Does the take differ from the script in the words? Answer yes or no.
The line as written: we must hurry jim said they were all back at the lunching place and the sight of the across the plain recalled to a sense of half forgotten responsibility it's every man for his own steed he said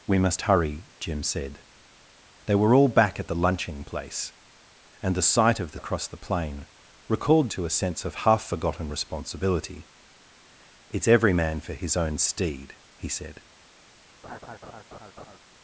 no